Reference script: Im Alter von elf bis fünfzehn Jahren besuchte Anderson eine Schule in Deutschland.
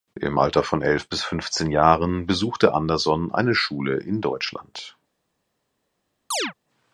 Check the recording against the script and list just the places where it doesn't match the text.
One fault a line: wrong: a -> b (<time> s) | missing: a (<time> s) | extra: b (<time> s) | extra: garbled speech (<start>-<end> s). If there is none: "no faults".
no faults